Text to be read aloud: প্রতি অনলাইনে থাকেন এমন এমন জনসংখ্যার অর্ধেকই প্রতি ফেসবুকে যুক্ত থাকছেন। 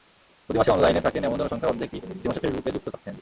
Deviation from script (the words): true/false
true